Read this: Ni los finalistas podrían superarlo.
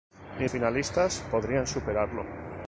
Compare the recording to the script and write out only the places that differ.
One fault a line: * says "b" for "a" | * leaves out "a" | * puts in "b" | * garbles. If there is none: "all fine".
* leaves out "los"